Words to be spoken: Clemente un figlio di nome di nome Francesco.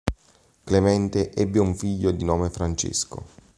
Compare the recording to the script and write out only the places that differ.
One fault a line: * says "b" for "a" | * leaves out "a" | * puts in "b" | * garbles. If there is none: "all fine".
* puts in "ebbe"
* leaves out "di nome"